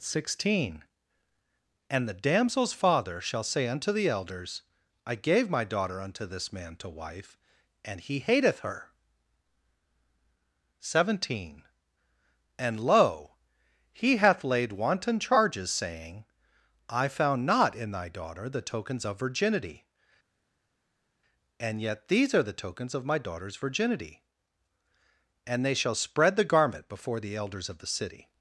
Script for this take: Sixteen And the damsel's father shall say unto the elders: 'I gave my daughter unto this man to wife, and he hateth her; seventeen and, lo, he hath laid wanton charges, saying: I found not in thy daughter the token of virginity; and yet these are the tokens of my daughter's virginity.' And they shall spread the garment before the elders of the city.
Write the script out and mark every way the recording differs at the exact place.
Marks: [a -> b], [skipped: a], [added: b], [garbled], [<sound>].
Sixteen And the damsel's father shall say unto the elders: 'I gave my daughter unto this man to wife, and he hateth her; seventeen and, lo, he hath laid wanton charges, saying: I found not in thy daughter the [token -> tokens] of virginity; and yet these are the tokens of my daughter's virginity.' And they shall spread the garment before the elders of the city.